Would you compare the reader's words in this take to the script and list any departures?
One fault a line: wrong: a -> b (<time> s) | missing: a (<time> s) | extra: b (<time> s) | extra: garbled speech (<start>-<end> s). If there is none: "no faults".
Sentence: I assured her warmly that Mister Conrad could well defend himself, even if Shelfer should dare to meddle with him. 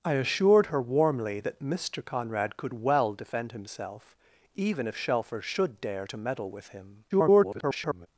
extra: garbled speech (7.1-8.1 s)